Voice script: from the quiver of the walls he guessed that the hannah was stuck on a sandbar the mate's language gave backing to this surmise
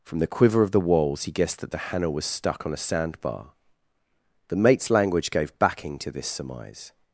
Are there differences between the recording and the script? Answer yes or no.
no